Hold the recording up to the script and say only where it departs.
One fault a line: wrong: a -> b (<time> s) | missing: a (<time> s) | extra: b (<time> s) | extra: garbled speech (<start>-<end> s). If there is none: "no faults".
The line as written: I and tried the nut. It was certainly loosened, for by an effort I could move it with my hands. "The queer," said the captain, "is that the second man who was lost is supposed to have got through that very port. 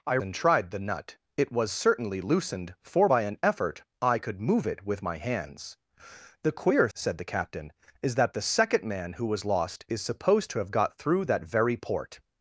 no faults